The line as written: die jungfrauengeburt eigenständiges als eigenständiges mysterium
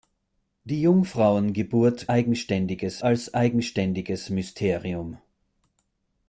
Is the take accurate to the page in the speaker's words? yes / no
yes